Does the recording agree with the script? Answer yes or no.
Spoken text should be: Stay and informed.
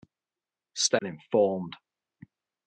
yes